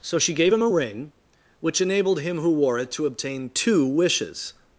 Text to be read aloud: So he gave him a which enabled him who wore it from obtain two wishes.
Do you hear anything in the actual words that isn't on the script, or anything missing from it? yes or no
yes